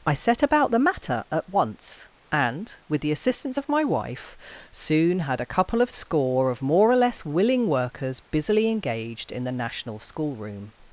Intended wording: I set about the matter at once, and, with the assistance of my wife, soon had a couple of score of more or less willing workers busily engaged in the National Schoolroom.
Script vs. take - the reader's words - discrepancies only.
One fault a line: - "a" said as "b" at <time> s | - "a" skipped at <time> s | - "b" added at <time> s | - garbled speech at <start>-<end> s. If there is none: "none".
none